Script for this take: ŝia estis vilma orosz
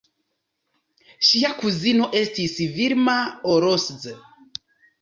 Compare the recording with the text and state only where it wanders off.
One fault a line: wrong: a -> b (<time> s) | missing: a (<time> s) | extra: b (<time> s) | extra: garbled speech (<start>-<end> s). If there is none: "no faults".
extra: kuzino (1.6 s)